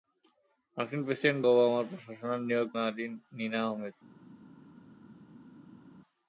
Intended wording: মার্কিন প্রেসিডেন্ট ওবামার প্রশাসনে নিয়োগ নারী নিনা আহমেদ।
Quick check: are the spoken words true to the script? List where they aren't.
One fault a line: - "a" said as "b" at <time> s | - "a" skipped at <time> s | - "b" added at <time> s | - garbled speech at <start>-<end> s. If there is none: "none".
none